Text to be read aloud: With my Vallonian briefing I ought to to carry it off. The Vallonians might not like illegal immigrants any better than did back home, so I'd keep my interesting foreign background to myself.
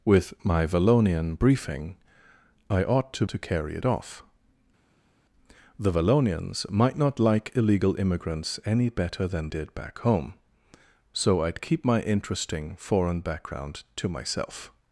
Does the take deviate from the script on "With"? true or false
false